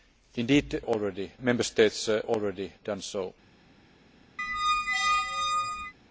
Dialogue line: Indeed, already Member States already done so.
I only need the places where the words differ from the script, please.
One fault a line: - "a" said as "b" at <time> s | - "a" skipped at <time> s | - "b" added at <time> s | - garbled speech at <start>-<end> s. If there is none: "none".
none